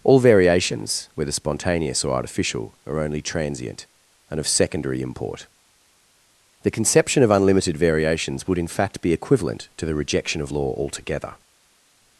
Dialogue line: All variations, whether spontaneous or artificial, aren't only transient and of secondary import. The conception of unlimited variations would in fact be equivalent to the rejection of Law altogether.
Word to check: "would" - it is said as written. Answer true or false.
true